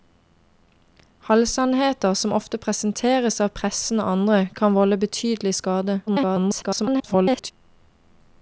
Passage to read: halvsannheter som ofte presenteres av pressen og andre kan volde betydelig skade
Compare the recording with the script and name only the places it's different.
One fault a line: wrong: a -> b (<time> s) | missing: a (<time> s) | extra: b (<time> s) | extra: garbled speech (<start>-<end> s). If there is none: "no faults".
extra: garbled speech (6.1-7.5 s)